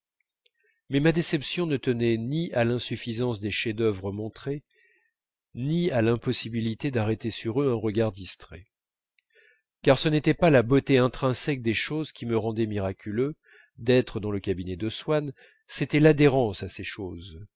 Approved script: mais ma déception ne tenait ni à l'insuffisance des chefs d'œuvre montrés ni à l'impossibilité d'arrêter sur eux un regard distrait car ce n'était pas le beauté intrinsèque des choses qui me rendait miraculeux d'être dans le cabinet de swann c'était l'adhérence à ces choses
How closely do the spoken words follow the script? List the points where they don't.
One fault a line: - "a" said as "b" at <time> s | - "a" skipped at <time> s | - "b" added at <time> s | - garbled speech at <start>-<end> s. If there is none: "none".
- "le" said as "la" at 10.5 s